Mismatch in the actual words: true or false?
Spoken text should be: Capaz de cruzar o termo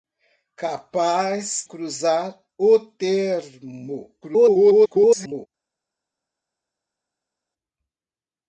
true